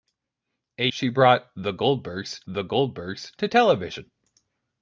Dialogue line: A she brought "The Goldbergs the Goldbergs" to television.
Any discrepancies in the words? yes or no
no